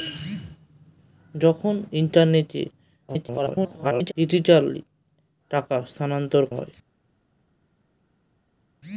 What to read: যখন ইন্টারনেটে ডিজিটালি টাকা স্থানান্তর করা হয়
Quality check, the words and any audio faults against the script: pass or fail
fail